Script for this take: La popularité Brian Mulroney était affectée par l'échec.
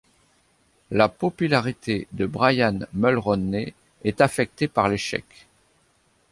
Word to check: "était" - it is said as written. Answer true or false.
false